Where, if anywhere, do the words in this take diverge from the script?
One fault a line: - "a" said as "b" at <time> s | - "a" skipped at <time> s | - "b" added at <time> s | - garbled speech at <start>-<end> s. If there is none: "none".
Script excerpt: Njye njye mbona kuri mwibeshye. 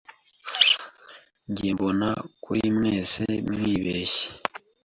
- "njye" skipped at 1.7 s
- "mwese" added at 2.8 s